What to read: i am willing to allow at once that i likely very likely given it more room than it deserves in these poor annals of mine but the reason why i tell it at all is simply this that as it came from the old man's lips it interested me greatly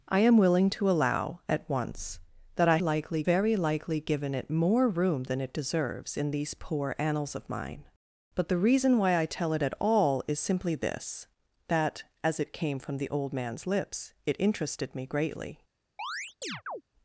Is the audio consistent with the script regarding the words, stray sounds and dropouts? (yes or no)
no